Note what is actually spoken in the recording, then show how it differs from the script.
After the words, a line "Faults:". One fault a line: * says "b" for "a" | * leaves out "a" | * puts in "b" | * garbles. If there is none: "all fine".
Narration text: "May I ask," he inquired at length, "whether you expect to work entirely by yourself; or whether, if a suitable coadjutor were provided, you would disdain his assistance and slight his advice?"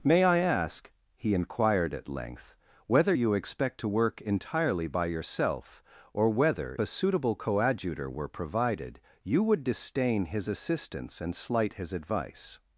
"May I ask," he inquired at length, "whether you expect to work entirely by yourself; or whether, a suitable coadjutor were provided, you would disdain his assistance and slight his advice?"
Faults:
* leaves out "if"